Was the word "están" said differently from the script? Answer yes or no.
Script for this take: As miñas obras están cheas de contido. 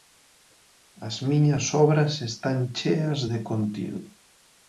no